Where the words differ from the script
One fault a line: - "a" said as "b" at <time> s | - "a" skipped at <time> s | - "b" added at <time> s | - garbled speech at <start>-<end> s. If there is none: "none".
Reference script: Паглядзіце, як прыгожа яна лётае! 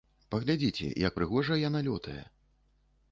none